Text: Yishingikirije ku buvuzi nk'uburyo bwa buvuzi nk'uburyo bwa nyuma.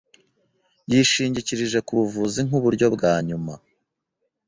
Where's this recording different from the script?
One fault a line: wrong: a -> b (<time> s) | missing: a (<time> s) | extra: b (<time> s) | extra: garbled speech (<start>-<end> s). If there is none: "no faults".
missing: buvuzi nk'uburyo bwa (3.1 s)